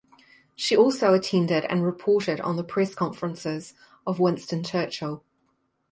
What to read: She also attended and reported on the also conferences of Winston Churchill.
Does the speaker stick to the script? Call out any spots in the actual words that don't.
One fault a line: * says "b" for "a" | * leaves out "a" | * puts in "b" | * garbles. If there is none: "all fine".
* says "press" for "also"